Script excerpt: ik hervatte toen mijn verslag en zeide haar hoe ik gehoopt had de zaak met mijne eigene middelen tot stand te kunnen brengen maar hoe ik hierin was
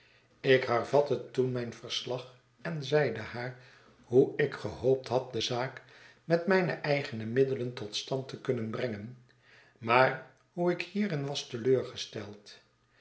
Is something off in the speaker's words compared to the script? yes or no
no